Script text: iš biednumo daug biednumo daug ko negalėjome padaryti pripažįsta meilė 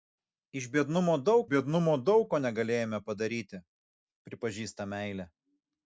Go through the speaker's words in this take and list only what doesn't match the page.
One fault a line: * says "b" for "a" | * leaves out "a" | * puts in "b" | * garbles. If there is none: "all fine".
all fine